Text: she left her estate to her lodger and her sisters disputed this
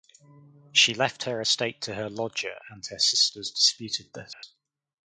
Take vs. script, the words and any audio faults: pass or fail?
fail